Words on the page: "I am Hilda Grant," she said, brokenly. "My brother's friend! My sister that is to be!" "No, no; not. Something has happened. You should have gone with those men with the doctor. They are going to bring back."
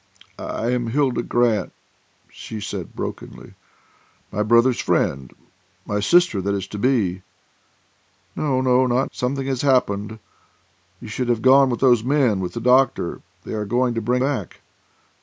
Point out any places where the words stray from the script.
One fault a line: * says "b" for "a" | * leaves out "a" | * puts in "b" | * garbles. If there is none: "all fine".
all fine